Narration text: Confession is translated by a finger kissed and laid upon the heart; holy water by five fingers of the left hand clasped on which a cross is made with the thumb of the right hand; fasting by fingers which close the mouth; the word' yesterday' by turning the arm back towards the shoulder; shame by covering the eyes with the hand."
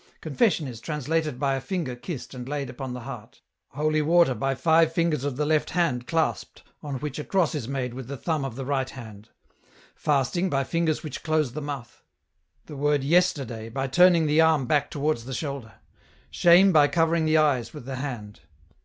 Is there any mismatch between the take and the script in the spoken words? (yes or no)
no